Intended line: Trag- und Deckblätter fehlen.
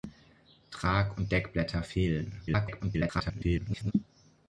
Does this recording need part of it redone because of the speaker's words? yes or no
yes